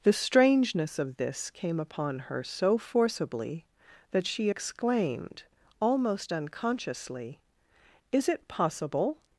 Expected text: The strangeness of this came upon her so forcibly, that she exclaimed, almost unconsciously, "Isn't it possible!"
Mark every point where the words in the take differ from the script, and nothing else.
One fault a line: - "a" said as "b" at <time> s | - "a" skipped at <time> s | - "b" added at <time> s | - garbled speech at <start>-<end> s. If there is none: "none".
- "Isn't" said as "Is" at 8.1 s